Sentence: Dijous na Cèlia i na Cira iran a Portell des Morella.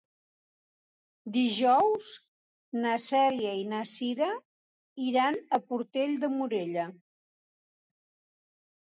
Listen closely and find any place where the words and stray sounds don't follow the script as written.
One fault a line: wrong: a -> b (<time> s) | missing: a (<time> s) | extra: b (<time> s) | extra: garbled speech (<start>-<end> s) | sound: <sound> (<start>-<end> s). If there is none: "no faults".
wrong: des -> de (6.3 s)